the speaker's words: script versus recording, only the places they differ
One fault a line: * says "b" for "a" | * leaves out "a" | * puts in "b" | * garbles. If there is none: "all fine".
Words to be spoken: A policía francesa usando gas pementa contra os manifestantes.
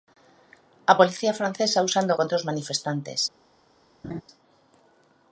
* leaves out "gas pementa"